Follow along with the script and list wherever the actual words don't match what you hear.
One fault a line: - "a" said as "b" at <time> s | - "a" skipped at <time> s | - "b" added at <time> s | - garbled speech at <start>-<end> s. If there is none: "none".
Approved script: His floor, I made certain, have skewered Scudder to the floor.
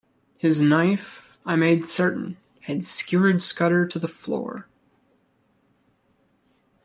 - "floor" said as "knife" at 0.6 s
- "have" said as "had" at 2.6 s